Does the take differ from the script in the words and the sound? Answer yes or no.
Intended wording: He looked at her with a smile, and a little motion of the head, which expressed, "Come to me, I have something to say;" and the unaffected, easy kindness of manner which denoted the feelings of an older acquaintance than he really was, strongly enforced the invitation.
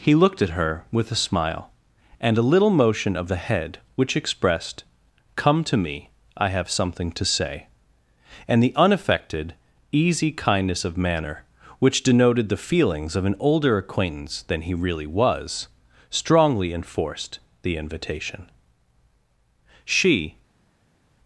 yes